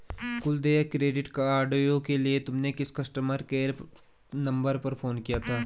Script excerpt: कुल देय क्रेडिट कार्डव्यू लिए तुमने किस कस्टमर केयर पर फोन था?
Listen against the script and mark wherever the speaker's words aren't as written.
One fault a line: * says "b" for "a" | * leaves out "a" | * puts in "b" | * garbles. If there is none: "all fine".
* puts in "के"
* puts in "नंबर"
* puts in "किया"